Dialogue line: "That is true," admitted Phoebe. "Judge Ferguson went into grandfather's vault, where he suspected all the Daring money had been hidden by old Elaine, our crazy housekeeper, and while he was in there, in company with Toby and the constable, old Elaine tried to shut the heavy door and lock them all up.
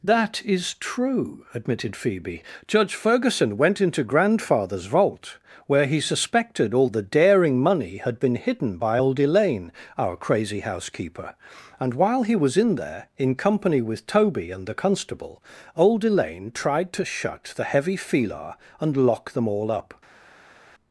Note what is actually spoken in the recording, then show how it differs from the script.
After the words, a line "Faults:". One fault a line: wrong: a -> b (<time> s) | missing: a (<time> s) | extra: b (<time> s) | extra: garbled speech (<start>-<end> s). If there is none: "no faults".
"That is true," admitted Phoebe. "Judge Ferguson went into grandfather's vault, where he suspected all the Daring money had been hidden by old Elaine, our crazy housekeeper, and while he was in there, in company with Toby and the constable, old Elaine tried to shut the heavy filar and lock them all up.
Faults:
wrong: door -> filar (18.0 s)